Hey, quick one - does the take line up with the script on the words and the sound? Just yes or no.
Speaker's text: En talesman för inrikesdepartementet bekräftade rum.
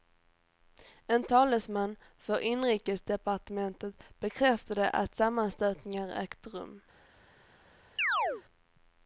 no